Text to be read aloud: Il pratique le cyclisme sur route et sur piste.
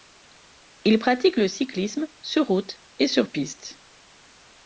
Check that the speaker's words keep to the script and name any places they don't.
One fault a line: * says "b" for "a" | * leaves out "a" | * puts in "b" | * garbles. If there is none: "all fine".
all fine